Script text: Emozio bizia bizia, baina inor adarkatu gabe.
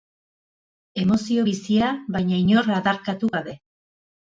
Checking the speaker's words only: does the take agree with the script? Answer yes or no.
no